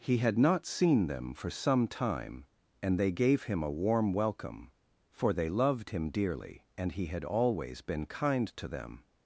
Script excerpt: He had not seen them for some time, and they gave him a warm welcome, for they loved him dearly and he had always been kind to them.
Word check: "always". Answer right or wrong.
right